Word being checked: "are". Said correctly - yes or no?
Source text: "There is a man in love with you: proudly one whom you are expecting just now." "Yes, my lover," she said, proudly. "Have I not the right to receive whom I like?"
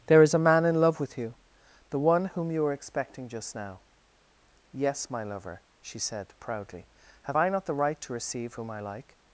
no